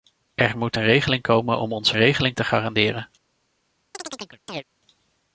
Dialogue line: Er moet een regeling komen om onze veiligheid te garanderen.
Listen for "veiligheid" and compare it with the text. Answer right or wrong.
wrong